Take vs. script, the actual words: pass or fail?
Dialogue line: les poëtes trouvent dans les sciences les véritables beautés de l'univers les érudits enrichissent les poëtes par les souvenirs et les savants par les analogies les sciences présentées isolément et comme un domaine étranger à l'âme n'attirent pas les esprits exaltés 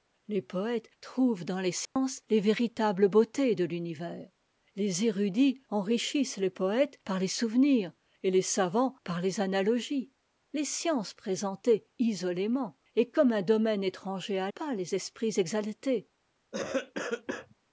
fail